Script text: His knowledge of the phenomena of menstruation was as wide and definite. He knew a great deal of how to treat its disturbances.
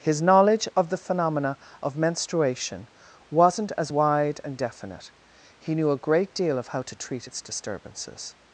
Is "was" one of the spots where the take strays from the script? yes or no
yes